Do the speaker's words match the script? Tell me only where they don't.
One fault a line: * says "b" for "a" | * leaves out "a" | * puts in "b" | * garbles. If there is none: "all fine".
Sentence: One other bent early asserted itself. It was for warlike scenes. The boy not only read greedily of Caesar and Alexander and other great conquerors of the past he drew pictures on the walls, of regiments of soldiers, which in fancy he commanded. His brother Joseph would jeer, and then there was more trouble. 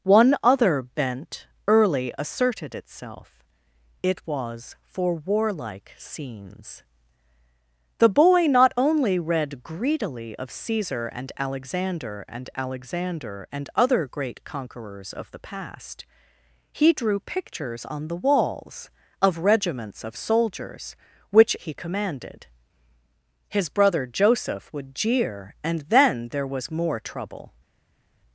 * puts in "Alexander and"
* leaves out "in fancy"